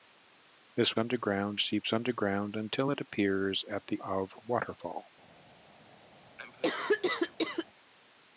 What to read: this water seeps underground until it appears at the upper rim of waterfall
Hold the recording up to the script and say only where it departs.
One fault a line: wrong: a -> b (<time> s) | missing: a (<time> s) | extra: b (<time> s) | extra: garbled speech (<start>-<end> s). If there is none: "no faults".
wrong: water -> underground (1.0 s)
missing: upper rim (4.0 s)